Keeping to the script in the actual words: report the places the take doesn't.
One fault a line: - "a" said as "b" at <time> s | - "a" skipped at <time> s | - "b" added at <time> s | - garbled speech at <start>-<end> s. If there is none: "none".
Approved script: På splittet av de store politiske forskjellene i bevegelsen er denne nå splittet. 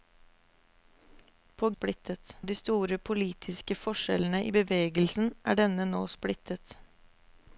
none